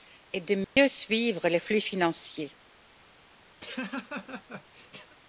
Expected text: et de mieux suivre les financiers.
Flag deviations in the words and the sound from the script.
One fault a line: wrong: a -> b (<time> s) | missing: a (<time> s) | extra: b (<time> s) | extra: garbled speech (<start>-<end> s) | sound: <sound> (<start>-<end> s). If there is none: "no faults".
sound: dropout (0.6-0.8 s)
extra: flux (1.6 s)
sound: laugh (3.6-5.2 s)